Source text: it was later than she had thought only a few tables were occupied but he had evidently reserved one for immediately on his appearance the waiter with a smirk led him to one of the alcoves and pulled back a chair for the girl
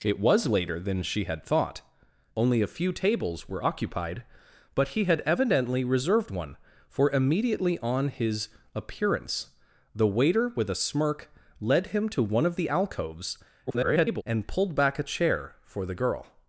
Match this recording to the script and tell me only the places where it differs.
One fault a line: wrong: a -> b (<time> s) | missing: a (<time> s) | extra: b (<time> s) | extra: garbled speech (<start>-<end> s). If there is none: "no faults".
extra: garbled speech (13.7-14.2 s)